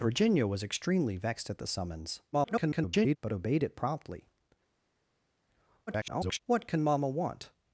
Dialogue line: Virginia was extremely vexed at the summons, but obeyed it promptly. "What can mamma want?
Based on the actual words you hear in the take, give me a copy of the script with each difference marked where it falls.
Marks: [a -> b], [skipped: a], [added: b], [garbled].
Virginia was extremely vexed at the summons, [garbled] but obeyed it promptly. [garbled] "What can mamma want?